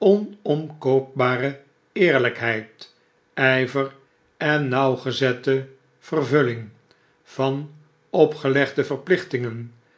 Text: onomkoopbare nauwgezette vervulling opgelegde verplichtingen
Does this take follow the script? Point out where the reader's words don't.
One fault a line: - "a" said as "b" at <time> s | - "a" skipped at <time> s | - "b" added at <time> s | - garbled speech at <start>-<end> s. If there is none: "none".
- "eerlijkheid ijver en" added at 1.9 s
- "van" added at 7.2 s